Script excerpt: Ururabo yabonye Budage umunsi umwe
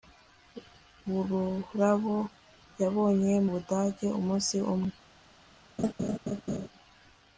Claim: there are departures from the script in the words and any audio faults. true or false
true